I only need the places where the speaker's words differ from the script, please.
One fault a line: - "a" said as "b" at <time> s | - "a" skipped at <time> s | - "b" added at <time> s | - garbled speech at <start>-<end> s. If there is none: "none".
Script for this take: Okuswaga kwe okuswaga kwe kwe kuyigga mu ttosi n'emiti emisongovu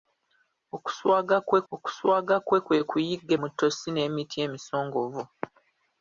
none